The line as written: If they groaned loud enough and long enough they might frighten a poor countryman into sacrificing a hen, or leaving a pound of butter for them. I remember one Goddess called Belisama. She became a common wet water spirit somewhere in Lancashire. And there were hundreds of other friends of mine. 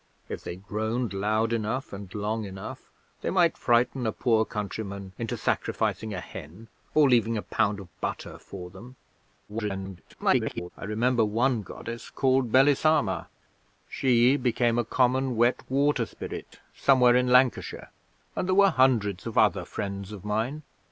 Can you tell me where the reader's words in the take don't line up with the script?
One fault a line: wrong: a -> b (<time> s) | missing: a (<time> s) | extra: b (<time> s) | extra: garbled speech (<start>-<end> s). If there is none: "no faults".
extra: garbled speech (9.5-10.7 s)